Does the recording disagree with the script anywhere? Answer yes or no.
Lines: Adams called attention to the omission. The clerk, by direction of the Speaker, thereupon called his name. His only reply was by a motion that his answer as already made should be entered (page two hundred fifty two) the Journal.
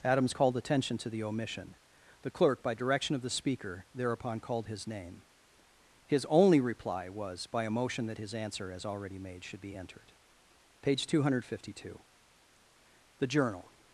no